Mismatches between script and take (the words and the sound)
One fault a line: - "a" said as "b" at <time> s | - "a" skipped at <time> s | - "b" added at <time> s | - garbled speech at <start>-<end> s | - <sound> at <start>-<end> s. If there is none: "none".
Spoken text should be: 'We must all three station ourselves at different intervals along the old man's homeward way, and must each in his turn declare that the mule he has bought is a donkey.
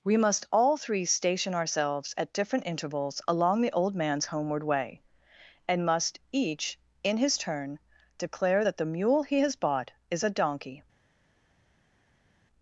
none